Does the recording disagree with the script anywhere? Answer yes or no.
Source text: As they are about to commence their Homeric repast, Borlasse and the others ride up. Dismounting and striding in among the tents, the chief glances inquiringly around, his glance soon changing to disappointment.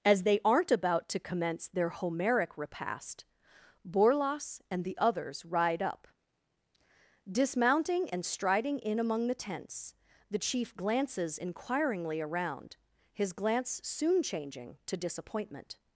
yes